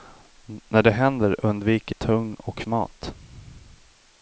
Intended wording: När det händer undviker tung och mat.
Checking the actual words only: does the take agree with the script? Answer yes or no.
yes